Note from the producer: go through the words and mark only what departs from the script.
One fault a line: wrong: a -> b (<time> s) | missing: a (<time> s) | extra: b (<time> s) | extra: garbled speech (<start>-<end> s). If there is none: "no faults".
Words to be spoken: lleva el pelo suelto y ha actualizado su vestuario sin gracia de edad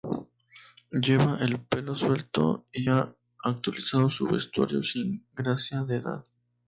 no faults